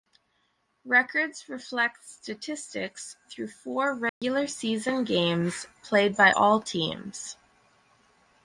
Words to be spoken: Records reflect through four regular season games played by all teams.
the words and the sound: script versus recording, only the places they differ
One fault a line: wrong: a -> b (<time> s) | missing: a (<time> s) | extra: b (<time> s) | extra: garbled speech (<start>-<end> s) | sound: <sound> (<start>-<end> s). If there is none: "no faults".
extra: statistics (2.1 s)
sound: dropout (4.1-4.2 s)